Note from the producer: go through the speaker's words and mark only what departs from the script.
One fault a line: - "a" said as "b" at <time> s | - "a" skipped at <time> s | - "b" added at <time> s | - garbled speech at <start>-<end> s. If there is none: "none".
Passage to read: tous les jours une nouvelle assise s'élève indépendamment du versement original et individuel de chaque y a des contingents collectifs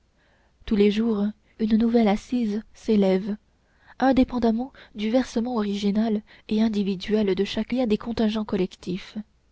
none